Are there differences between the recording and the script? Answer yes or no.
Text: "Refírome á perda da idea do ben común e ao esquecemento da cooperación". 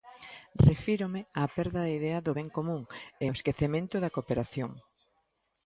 no